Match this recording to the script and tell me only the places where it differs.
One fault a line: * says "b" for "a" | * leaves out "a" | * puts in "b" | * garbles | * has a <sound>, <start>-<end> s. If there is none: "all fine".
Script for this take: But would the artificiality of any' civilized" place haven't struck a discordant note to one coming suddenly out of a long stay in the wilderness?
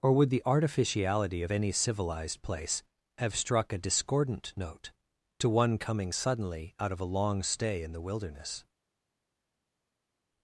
* says "Or" for "But"
* says "have" for "haven't"